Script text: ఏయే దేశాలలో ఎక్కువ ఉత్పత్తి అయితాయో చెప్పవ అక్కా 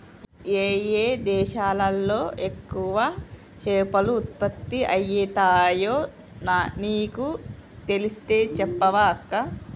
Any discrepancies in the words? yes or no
yes